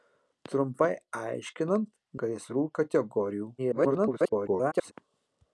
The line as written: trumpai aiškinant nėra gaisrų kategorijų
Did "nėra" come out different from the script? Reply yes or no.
yes